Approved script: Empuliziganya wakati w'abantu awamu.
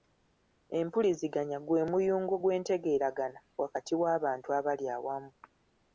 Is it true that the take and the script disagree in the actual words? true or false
true